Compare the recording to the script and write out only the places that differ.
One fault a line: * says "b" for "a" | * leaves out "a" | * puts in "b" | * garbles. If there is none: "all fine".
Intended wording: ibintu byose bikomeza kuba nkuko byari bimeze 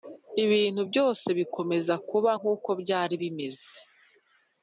all fine